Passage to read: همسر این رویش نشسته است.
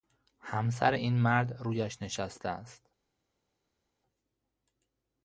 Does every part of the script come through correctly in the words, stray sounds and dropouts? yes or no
no